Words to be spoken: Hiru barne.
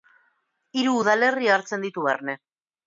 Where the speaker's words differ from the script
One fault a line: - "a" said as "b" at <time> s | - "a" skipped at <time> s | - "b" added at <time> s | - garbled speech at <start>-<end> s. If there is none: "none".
- "udalerri hartzen ditu" added at 1.0 s